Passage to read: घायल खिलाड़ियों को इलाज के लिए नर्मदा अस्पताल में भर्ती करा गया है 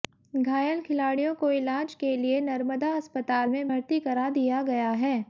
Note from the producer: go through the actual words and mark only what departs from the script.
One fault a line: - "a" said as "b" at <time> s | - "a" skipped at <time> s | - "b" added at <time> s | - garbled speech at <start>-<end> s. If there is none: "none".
- "दिया" added at 4.3 s